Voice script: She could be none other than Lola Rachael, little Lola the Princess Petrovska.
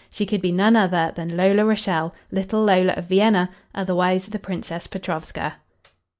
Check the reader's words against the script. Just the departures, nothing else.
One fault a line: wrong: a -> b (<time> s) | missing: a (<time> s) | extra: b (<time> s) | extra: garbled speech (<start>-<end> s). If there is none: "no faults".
extra: of Vienna otherwise (2.9 s)